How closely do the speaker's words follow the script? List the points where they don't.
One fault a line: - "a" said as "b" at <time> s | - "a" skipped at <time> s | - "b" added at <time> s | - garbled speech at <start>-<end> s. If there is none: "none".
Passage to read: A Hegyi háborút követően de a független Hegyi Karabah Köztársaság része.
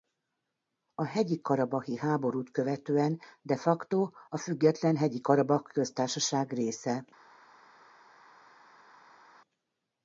- "karabahi" added at 1.4 s
- "facto" added at 3.6 s